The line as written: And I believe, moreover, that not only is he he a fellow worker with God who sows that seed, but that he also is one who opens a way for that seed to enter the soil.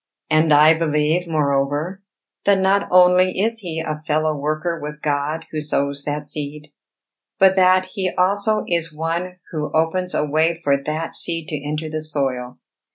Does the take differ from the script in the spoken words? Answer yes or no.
yes